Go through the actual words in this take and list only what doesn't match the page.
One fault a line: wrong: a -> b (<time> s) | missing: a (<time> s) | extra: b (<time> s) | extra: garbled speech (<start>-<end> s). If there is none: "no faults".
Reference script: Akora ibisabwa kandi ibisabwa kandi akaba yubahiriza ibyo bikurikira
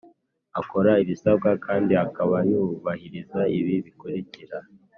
missing: ibisabwa kandi (1.9 s)
wrong: ibyo -> ibi (3.6 s)